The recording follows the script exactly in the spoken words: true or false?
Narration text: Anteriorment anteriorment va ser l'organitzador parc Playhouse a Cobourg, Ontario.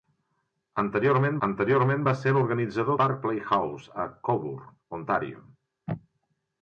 true